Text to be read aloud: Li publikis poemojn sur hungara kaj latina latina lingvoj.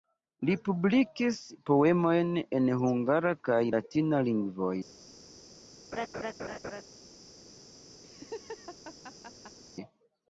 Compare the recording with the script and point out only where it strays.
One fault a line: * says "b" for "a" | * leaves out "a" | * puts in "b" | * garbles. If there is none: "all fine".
* says "en" for "sur"
* leaves out "latina"